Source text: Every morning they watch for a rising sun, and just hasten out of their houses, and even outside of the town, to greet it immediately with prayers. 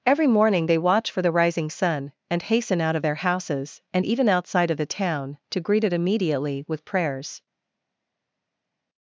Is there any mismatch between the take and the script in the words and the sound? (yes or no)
yes